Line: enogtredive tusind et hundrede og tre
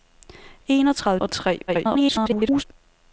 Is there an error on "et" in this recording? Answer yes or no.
yes